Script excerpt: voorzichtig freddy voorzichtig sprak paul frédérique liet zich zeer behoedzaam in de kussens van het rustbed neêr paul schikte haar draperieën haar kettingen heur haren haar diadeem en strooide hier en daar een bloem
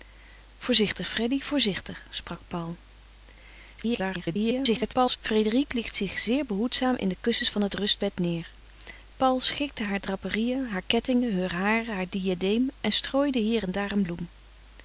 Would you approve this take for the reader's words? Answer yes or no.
no